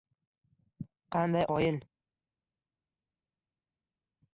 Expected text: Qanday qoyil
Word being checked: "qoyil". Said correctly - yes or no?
yes